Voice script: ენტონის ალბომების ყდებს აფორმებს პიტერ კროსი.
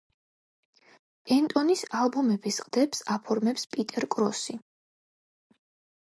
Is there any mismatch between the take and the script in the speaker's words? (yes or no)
no